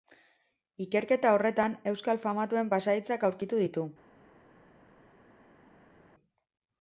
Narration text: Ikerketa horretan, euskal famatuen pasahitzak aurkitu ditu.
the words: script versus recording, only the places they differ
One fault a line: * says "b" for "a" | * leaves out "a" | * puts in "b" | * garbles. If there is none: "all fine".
all fine